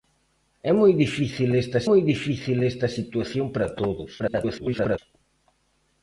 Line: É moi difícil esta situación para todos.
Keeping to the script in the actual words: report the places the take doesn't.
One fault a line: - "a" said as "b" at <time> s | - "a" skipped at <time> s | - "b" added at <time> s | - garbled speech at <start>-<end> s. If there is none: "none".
- "moi difícil esta" added at 1.9 s
- garbled speech at 4.2-5.0 s